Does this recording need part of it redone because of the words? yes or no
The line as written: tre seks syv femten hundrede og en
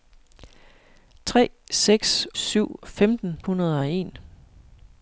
no